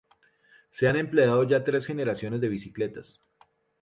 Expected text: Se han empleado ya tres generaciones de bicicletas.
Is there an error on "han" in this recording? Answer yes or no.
no